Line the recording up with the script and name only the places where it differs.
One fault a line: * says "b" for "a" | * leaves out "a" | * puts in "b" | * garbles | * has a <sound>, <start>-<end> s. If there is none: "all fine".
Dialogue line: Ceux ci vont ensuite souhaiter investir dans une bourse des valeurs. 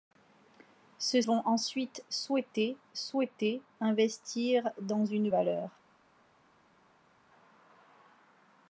* leaves out "ci"
* puts in "souhaiter"
* leaves out "bourse des"